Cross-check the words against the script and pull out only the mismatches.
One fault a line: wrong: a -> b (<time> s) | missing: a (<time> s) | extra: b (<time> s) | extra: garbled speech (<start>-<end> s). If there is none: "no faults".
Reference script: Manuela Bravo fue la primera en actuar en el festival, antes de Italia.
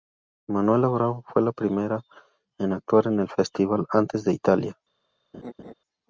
no faults